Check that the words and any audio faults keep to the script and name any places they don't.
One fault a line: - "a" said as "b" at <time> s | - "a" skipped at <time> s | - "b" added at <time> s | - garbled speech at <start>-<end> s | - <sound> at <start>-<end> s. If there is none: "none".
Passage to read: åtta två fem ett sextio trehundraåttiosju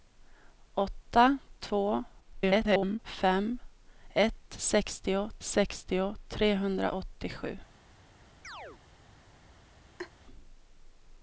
- garbled speech at 2.2-3.0 s
- "sextio" added at 5.4 s
- chirp at 8.4-8.8 s
- laugh at 10.0-10.1 s